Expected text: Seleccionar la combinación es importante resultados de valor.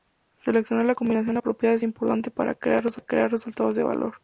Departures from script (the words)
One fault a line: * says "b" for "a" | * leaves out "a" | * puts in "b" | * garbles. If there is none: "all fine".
* puts in "apropiada"
* puts in "para crear"